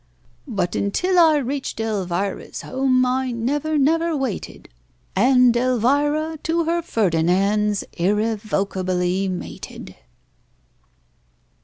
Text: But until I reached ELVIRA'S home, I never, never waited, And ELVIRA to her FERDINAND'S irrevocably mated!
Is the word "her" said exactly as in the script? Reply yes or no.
yes